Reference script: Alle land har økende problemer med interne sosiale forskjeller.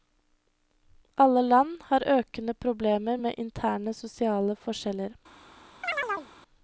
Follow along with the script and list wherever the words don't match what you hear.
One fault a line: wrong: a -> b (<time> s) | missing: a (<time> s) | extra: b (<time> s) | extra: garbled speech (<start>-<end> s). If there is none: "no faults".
no faults